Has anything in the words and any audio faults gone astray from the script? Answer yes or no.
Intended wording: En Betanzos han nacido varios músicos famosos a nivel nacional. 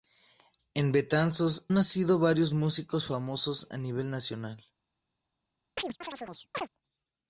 yes